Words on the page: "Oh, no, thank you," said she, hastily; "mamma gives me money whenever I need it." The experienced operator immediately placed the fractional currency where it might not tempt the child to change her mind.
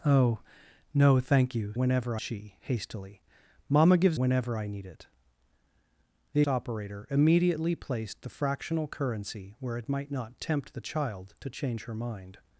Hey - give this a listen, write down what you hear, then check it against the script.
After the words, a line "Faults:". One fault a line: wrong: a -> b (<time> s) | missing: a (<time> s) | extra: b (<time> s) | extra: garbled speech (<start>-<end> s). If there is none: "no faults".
"Oh, no, thank you," whenever she, hastily; "mamma gives whenever I need it." The operator immediately placed the fractional currency where it might not tempt the child to change her mind.
Faults:
wrong: said -> whenever (1.7 s)
missing: me money (4.2 s)
missing: experienced (6.4 s)